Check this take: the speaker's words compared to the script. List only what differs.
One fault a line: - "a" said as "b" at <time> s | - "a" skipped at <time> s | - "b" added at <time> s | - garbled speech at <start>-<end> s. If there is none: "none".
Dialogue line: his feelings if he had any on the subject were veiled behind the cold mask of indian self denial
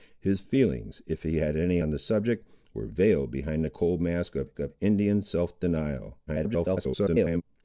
- "of" added at 4.6 s
- garbled speech at 6.3-7.4 s